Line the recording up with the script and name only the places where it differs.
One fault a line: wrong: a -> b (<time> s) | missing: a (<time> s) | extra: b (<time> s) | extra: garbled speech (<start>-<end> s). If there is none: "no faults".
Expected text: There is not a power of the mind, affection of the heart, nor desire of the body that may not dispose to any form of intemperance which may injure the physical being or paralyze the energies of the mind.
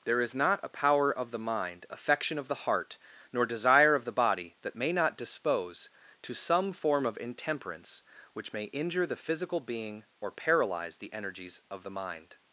wrong: any -> some (6.3 s)